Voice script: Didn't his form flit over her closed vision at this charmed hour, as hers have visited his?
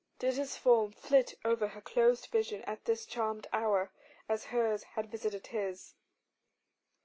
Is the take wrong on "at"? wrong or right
right